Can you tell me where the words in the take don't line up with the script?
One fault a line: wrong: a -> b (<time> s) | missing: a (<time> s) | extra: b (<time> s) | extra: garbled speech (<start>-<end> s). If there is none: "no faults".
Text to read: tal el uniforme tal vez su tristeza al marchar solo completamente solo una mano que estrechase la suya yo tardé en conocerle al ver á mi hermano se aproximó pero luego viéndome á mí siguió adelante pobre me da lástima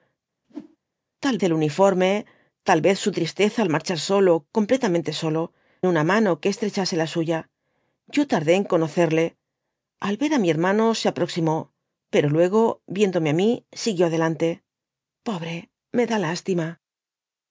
no faults